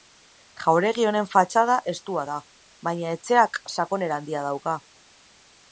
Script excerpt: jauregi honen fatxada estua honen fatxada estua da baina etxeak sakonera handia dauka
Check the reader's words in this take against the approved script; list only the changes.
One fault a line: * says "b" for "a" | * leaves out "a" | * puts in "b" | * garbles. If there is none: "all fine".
* leaves out "honen fatxada estua"